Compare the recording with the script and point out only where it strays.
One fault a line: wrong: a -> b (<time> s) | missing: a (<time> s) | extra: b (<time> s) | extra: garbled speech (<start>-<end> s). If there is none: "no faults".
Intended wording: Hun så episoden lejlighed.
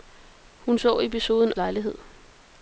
no faults